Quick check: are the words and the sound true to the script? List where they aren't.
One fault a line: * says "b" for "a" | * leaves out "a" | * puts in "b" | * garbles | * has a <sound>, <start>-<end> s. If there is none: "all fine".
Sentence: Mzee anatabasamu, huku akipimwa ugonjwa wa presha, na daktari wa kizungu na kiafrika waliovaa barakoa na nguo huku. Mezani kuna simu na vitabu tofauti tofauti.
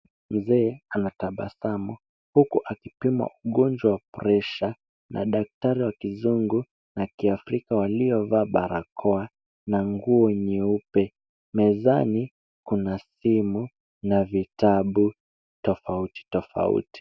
* says "nyeupe" for "huku"